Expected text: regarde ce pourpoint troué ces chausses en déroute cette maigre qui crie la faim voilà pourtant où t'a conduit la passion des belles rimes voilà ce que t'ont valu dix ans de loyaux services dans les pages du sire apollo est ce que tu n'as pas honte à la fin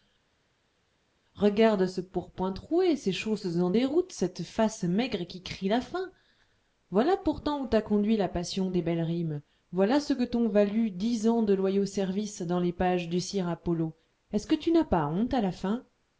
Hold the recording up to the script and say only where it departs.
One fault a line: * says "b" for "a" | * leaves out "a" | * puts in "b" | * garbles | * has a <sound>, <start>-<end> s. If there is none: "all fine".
* puts in "face"